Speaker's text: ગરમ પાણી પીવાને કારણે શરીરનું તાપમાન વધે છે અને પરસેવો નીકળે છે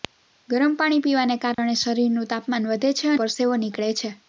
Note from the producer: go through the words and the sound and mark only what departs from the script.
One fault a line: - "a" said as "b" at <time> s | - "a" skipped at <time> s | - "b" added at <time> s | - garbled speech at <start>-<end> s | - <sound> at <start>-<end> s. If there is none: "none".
- dropout at 1.5-1.6 s
- "અને" skipped at 3.1 s